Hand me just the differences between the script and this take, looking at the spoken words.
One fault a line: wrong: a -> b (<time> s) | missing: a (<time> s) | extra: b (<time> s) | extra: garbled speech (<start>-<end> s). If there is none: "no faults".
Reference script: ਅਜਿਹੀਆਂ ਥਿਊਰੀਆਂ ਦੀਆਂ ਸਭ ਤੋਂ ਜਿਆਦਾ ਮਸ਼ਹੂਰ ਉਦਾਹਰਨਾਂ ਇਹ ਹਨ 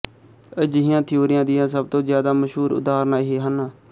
no faults